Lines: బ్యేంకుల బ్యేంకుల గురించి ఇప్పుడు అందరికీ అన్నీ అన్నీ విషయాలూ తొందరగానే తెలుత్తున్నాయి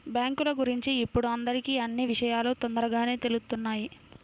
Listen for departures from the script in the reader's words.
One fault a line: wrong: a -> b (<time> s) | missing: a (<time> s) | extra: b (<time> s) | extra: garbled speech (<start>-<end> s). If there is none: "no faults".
missing: బ్యేంకుల (0.5 s)
missing: అన్నీ (2.0 s)